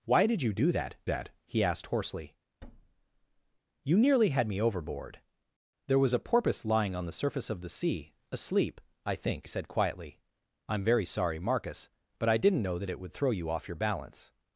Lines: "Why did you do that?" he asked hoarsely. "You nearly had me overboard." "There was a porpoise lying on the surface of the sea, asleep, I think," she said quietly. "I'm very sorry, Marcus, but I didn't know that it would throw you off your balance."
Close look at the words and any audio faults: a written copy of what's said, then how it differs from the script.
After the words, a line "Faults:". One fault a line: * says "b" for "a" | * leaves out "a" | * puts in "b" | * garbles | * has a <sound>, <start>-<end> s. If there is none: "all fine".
"Why did you do that that?" he asked hoarsely. "You nearly had me overboard." "There was a porpoise lying on the surface of the sea, asleep, I think," said quietly. "I'm very sorry, Marcus, but I didn't know that it would throw you off your balance."
Faults:
* puts in "that"
* has a thud, 2.6-3.6 s
* leaves out "she"